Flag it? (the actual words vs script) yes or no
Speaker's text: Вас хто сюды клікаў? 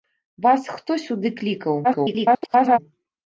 yes